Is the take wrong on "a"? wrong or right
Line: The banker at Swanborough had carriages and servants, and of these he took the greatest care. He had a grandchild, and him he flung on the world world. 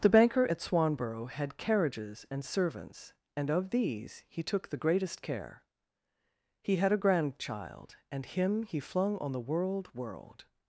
right